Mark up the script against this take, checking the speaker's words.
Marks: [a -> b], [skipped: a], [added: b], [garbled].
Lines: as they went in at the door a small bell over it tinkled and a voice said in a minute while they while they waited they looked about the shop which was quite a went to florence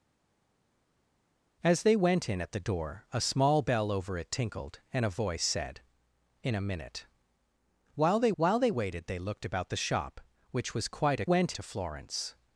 as they went in at the door a small bell over it tinkled and a voice said in a minute while they while they waited they looked about the shop which was quite a went to florence